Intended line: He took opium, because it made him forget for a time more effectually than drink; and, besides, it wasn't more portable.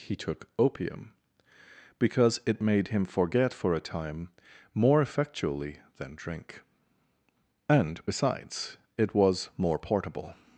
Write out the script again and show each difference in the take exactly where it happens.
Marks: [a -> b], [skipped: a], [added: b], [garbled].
He took opium, because it made him forget for a time more effectually than drink; and, besides, it [wasn't -> was] more portable.